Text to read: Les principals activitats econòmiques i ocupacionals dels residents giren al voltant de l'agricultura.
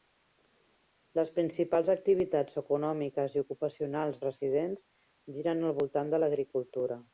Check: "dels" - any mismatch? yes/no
yes